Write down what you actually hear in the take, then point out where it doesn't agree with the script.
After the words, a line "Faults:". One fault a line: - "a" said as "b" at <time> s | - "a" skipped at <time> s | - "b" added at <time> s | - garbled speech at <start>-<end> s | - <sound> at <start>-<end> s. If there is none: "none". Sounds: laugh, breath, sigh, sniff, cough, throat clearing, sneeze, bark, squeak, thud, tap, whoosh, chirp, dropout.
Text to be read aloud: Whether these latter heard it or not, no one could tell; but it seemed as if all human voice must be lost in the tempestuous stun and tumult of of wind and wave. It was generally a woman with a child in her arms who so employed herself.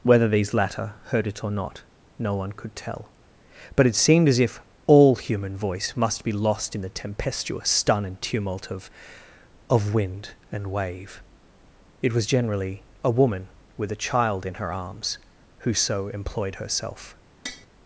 Whether these latter heard it or not, no one could tell; but it seemed as if all human voice must be lost in the tempestuous stun and tumult of of wind and wave. It was generally a woman with a child in her arms who so employed herself.
Faults:
- tap at 17.5-17.7 s